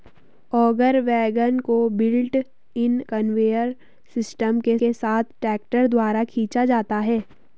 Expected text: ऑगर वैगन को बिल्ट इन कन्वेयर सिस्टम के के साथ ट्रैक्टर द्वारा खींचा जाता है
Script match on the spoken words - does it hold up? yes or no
yes